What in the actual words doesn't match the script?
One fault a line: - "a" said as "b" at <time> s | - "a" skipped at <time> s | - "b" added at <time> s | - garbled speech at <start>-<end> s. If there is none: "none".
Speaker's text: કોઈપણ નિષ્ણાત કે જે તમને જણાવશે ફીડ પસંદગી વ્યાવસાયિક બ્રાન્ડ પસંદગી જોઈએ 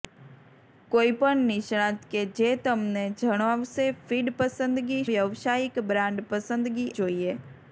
none